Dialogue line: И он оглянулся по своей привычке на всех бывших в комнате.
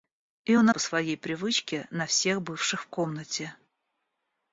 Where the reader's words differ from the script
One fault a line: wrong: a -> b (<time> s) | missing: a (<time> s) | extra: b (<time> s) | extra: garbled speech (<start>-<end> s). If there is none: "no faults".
missing: оглянулся (0.7 s)